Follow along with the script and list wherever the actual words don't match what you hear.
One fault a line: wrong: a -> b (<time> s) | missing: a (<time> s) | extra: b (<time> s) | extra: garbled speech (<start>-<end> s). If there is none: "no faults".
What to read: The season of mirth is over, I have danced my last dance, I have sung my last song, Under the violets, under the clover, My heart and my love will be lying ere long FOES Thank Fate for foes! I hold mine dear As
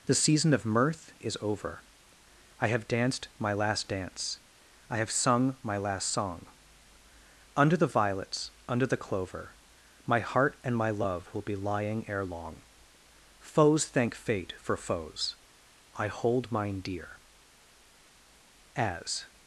no faults